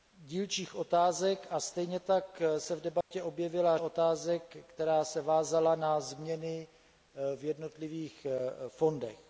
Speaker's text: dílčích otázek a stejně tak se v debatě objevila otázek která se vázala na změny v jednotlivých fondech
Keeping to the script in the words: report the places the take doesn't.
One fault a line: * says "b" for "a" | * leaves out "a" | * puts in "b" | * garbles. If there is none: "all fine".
all fine